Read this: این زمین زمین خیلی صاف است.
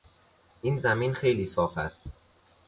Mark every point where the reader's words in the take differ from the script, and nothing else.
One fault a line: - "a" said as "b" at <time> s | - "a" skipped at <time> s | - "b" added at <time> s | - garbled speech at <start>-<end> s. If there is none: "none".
- "زمین" skipped at 1.1 s